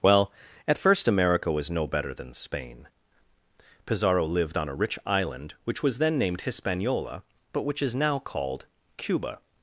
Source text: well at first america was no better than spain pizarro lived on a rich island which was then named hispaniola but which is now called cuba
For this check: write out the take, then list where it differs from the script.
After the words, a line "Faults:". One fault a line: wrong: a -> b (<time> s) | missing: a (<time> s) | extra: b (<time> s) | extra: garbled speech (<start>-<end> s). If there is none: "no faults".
well at first america was no better than spain pizarro lived on a rich island which was then named hispaniola but which is now called cuba
Faults:
no faults